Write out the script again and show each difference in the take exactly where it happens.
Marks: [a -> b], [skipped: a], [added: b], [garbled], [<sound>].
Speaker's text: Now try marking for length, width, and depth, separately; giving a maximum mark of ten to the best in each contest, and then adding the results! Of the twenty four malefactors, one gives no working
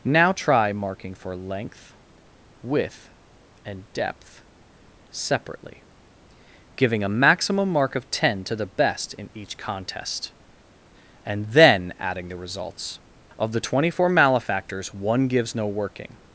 Now try marking for length, width, and depth, separately; giving a maximum mark of ten to the best in each contest, and then adding the results! Of the twenty four malefactors, one gives no working